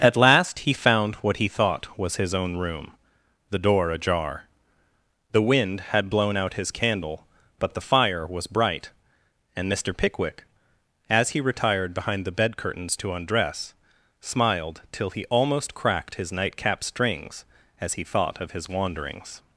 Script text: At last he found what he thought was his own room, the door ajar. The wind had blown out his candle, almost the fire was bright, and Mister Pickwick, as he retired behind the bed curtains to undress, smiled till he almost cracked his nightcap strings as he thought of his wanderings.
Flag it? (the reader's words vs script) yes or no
yes